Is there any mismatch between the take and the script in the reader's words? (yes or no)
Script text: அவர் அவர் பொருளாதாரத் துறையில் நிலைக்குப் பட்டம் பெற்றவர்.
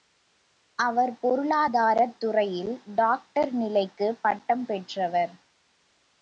yes